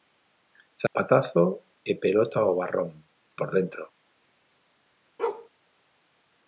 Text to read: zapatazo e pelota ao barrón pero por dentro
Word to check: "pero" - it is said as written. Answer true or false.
false